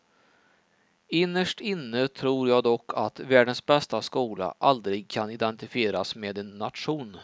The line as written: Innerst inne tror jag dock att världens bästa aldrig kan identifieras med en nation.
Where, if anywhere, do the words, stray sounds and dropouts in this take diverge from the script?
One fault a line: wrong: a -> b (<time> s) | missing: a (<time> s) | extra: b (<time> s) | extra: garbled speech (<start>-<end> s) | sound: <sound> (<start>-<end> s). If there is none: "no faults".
extra: skola (4.0 s)